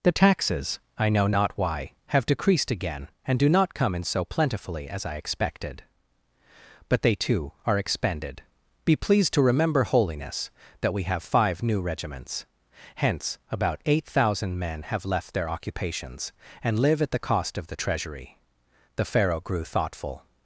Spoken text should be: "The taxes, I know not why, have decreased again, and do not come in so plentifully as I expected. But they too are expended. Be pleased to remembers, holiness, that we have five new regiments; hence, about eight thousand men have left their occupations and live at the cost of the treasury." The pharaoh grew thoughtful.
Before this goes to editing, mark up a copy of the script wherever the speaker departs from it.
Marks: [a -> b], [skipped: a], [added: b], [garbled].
"The taxes, I know not why, have decreased again, and do not come in so plentifully as I expected. But they too are expended. Be pleased to [remembers, -> remember] holiness, that we have five new regiments; hence, about eight thousand men have left their occupations and live at the cost of the treasury." The pharaoh grew thoughtful.